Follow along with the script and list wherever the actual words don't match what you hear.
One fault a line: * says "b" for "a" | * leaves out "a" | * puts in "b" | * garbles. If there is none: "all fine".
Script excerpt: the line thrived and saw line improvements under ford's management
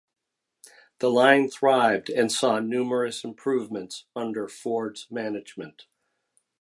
* says "numerous" for "line"